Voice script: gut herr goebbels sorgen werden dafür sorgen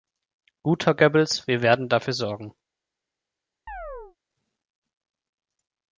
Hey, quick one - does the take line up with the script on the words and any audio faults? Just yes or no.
no